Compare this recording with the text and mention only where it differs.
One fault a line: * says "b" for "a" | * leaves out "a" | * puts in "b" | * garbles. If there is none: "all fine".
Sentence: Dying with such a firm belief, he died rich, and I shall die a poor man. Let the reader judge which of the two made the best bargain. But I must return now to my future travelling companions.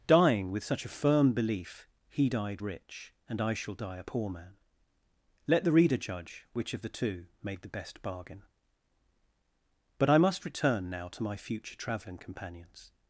all fine